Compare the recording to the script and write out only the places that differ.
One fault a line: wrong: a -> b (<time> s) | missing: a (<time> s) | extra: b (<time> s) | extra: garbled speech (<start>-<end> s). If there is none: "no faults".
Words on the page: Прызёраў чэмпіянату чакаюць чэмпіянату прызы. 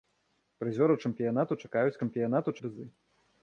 no faults